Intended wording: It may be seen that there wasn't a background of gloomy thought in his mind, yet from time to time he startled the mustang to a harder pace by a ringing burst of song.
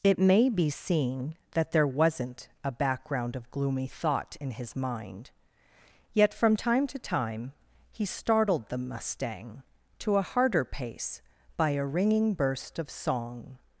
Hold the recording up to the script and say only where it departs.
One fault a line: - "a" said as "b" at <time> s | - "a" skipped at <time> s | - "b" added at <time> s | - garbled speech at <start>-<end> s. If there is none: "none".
none